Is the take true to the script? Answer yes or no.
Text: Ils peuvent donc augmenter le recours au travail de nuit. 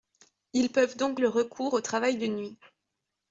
no